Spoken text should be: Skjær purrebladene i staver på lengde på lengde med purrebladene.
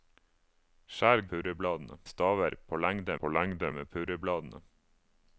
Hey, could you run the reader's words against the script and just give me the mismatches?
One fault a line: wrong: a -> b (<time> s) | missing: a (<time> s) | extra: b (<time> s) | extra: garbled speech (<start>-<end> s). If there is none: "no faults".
no faults